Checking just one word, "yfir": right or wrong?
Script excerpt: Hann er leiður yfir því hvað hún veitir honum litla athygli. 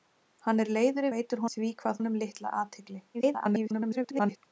wrong